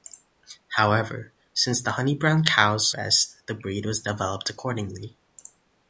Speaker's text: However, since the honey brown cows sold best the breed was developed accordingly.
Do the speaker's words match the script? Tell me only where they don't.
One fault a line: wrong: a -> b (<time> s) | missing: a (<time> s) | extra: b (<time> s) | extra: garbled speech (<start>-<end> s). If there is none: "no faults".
missing: sold (2.9 s)